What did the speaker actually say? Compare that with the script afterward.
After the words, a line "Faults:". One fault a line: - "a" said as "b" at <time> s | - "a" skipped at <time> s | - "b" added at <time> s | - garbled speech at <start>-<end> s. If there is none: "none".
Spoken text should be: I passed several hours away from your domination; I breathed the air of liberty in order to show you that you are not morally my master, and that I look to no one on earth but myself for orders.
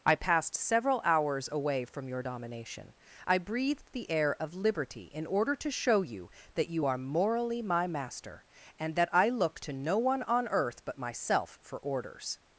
I passed several hours away from your domination; I breathed the air of liberty in order to show you that you are morally my master, and that I look to no one on earth but myself for orders.
Faults:
- "not" skipped at 7.0 s